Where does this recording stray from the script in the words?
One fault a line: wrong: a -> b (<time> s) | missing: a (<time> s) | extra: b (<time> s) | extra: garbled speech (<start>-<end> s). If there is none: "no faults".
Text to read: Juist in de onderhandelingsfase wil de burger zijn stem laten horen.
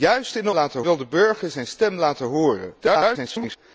wrong: onderhandelingsfase -> laten (0.5 s)
extra: garbled speech (2.8-3.6 s)